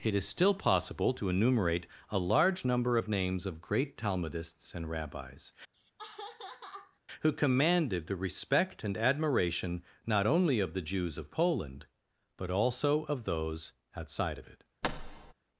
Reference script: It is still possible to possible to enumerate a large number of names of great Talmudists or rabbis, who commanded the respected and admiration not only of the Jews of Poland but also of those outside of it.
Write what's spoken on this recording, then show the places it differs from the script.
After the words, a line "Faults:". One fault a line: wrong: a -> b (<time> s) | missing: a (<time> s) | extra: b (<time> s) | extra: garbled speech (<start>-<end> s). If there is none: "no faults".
It is still possible to enumerate a large number of names of great Talmudists and rabbis, who commanded the respect and admiration not only of the Jews of Poland but also of those outside of it.
Faults:
missing: possible to (1.3 s)
wrong: or -> and (4.7 s)
wrong: respected -> respect (8.2 s)